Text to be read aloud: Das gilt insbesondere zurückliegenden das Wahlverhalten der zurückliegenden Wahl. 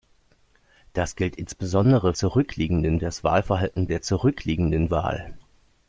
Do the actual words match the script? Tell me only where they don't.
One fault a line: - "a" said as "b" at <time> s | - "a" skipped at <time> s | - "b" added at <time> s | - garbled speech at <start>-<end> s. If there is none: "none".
none